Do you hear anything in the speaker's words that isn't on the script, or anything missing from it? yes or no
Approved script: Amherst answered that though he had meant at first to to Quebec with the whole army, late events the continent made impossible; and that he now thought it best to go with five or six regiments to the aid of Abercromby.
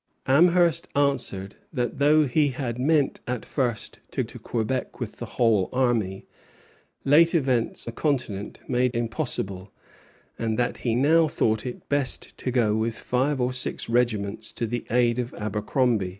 no